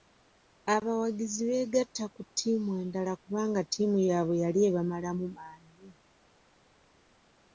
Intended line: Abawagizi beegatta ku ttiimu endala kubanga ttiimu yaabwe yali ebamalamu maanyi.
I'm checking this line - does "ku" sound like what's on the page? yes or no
yes